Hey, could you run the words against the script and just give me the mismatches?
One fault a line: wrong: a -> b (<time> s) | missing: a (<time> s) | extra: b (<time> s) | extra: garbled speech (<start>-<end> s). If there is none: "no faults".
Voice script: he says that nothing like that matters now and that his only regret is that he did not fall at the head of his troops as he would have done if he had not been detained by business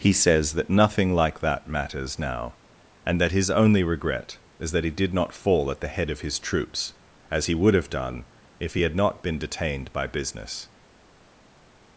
no faults